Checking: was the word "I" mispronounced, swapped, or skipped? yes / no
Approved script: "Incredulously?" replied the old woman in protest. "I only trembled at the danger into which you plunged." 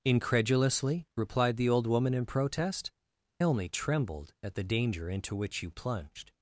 yes